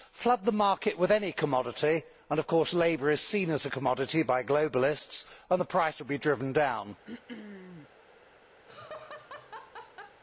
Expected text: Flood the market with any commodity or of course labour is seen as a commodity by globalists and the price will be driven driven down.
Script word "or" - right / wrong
wrong